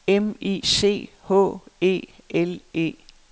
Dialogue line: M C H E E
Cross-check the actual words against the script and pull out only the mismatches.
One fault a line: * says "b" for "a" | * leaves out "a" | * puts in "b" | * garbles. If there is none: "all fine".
* puts in "I"
* puts in "L"